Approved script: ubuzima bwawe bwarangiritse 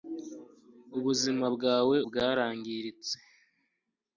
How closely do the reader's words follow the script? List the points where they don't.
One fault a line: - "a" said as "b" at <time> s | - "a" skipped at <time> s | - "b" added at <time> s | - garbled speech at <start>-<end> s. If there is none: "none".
none